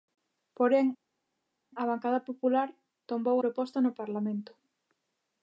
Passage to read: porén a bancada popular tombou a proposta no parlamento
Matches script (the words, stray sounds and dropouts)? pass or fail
fail